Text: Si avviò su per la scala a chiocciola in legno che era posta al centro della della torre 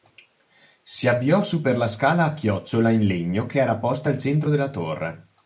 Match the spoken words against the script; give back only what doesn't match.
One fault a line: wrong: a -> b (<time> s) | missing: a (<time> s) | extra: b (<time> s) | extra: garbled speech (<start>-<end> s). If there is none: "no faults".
missing: della (4.7 s)